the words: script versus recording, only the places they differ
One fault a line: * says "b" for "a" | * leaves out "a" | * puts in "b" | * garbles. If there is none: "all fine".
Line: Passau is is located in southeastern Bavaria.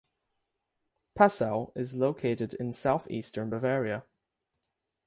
* leaves out "is"